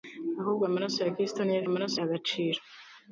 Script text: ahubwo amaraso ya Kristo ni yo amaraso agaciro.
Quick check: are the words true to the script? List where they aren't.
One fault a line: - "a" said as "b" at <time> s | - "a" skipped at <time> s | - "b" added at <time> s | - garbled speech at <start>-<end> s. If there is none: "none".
none